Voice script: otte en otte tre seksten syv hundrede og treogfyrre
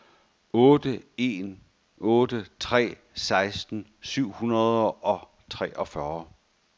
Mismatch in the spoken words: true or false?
false